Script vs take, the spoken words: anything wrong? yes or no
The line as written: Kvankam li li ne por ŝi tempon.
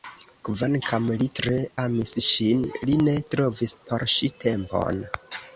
yes